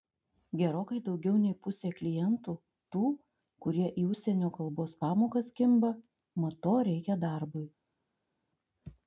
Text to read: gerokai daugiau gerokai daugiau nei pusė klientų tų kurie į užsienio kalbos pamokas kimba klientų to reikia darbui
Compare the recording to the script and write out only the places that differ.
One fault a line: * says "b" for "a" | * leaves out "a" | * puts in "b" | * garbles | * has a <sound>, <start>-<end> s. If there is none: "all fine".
* leaves out "gerokai daugiau"
* says "mat" for "klientų"